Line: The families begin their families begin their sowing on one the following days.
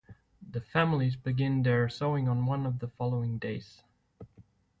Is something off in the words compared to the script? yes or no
yes